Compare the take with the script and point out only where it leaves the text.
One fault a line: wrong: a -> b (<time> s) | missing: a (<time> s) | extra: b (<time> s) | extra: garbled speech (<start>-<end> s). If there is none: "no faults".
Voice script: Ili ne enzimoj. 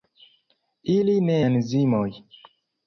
no faults